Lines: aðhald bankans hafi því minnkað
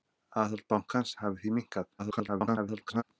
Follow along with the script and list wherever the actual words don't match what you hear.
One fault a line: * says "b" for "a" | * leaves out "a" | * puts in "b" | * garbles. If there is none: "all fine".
* garbles